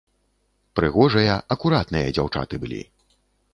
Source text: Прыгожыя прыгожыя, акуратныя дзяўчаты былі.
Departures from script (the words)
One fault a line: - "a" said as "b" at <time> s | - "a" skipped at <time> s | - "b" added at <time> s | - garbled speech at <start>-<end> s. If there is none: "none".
- "прыгожыя" skipped at 1.4 s